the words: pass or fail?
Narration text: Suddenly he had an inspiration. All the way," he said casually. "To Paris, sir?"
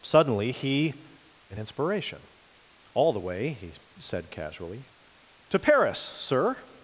fail